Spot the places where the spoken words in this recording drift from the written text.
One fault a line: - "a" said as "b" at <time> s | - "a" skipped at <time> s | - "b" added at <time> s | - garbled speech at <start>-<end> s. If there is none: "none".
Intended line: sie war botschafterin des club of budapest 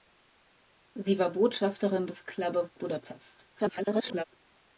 - garbled speech at 3.5-4.2 s